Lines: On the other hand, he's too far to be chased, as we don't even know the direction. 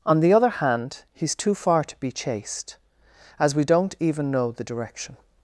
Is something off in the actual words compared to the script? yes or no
no